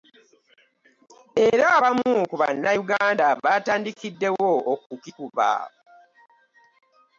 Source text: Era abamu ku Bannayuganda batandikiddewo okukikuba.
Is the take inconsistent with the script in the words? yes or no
no